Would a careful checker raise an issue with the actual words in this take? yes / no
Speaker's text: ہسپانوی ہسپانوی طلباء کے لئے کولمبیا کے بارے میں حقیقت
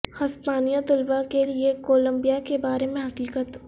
yes